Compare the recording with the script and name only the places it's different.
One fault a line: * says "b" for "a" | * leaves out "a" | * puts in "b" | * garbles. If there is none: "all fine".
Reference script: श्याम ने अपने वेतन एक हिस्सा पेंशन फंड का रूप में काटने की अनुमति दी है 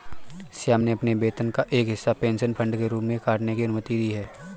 * puts in "का"
* says "के" for "का"